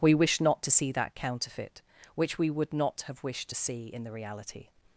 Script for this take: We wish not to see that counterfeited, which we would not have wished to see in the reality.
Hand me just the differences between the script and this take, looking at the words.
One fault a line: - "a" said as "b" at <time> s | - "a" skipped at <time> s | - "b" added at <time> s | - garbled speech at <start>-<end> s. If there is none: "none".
- "counterfeited" said as "counterfeit" at 1.1 s